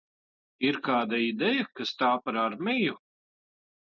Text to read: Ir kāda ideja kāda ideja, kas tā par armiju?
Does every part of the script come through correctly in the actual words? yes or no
no